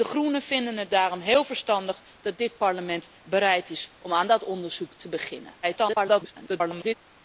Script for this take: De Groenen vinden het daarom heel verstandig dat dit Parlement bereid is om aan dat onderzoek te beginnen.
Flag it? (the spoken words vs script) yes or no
yes